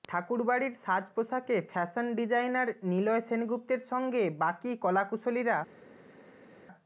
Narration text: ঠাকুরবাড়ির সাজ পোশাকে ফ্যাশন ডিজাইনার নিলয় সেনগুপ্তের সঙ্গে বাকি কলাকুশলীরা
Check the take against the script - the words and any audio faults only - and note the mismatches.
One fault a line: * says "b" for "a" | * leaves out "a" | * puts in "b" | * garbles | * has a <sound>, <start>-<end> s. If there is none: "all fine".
all fine